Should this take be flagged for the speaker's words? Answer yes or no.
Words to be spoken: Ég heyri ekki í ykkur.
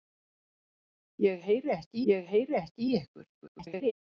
yes